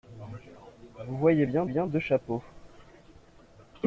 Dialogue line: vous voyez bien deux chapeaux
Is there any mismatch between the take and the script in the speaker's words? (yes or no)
yes